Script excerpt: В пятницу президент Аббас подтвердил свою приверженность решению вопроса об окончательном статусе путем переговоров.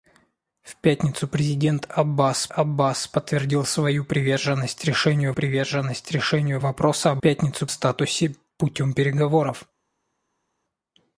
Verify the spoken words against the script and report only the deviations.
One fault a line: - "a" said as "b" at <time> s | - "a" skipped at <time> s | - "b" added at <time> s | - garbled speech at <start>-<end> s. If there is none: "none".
- "Аббас" added at 2.5 s
- "приверженность решению" added at 5.3 s
- "окончательном" said as "пятницу" at 7.2 s